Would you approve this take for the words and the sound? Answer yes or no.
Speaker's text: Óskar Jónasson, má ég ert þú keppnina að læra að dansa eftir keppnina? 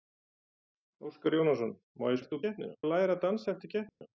no